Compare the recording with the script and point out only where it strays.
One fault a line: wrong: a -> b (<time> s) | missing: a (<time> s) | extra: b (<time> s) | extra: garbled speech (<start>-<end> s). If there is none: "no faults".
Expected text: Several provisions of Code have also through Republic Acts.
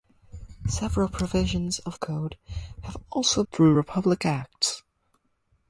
no faults